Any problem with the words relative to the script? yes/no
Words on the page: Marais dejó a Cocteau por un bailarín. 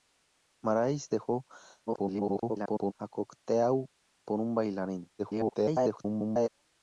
yes